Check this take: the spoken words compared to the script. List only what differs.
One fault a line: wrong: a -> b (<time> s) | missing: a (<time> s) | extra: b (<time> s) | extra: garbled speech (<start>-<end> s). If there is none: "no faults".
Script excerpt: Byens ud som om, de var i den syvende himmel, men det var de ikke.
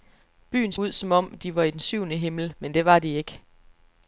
no faults